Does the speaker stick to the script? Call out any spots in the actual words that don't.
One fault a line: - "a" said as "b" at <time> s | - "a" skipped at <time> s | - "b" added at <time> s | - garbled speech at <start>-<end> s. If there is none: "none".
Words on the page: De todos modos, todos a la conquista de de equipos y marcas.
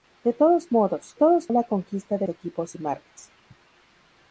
none